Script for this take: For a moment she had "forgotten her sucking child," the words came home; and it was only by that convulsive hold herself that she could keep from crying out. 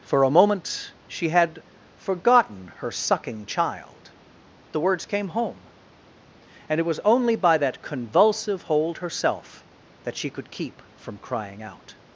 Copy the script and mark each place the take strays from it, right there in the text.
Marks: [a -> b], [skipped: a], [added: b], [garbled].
For a moment she had "forgotten her sucking child," the words came home; and it was only by that convulsive hold herself that she could keep from crying out.